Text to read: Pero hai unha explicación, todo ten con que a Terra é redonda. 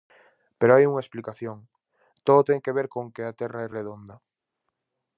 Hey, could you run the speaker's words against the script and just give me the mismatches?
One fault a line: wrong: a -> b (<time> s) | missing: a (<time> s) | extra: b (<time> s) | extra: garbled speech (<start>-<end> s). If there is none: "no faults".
extra: que ver (2.6 s)